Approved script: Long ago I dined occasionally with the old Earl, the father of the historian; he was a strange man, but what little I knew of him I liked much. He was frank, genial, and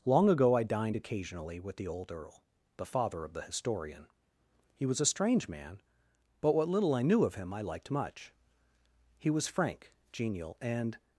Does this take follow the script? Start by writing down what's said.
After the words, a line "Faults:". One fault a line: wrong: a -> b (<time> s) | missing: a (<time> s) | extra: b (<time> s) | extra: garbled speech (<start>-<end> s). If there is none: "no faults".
Long ago I dined occasionally with the old Earl, the father of the historian; he was a strange man, but what little I knew of him I liked much. He was frank, genial, and
Faults:
no faults